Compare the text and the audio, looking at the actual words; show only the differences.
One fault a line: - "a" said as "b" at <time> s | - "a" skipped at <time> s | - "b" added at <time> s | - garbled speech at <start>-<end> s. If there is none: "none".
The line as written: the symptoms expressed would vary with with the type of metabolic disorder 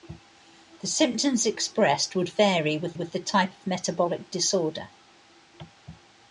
none